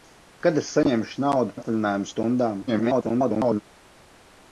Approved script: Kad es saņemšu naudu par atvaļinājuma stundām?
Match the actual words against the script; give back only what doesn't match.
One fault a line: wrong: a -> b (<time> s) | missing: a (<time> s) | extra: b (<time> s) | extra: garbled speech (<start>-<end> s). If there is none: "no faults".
missing: par (1.6 s)
extra: garbled speech (2.7-3.6 s)